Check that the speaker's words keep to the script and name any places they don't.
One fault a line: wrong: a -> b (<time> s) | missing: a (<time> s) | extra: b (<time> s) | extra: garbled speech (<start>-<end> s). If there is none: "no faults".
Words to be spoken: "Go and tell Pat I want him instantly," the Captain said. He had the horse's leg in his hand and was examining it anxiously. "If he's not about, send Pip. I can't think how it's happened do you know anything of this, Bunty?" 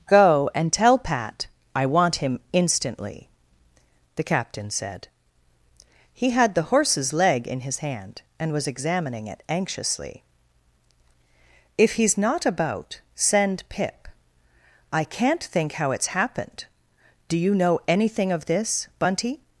no faults